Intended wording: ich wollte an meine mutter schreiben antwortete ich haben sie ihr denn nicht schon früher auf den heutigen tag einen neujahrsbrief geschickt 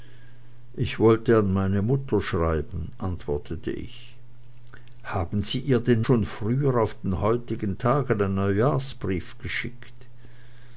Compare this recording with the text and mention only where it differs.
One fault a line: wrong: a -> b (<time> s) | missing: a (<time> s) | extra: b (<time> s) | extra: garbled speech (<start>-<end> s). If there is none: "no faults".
missing: nicht (6.0 s)